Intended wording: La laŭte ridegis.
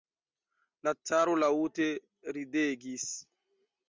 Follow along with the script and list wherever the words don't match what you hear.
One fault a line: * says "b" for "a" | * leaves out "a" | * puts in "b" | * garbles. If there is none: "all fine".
* puts in "caro"